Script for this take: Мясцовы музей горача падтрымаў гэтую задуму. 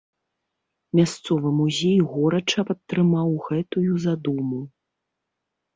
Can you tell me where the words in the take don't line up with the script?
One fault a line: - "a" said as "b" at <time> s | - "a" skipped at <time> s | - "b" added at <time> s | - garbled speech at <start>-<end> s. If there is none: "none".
none